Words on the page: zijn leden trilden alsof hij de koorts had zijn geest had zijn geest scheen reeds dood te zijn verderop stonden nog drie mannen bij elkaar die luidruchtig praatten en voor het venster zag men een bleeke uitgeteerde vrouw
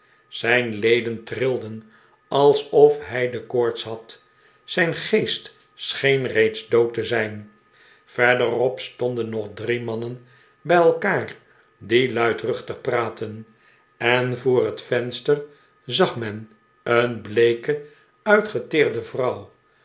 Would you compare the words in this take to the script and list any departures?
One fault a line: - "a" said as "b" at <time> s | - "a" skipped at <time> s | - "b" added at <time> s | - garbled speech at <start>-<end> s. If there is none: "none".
- "had zijn geest" skipped at 5.5 s